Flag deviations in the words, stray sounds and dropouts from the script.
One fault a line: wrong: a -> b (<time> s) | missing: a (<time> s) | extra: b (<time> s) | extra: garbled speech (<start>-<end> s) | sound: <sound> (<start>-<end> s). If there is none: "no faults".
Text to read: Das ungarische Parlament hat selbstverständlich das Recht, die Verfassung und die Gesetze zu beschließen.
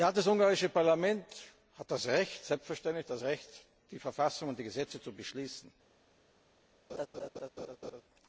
sound: laugh (6.9-8.0 s)